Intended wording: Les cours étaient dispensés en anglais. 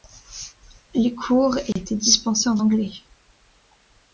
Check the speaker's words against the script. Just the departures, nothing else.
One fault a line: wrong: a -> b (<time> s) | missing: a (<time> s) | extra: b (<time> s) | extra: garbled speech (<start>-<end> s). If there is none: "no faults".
no faults